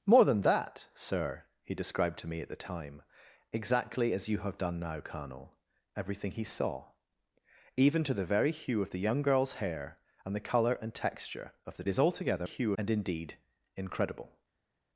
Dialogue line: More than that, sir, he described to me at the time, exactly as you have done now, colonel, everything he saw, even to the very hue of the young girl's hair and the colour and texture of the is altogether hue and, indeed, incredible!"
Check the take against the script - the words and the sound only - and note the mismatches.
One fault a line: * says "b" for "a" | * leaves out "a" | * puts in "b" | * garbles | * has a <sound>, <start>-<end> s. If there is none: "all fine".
all fine